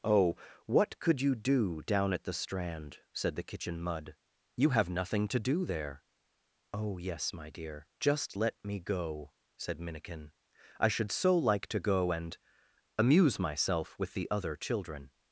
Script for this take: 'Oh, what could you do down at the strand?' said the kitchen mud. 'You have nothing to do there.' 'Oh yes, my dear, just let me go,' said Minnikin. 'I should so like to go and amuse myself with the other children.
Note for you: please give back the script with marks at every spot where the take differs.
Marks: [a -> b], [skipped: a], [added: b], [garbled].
'Oh, what could you do down at the strand?' said the kitchen mud. 'You have nothing to do there.' 'Oh yes, my dear, just let me go,' said Minnikin. 'I should so like to go and amuse myself with the other children.